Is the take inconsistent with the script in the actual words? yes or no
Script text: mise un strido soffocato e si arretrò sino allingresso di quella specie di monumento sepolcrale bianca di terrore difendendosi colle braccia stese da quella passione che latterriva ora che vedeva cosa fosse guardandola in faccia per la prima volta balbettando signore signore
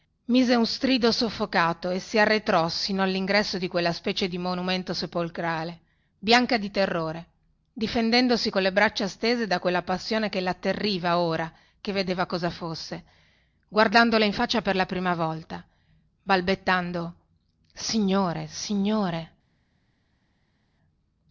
no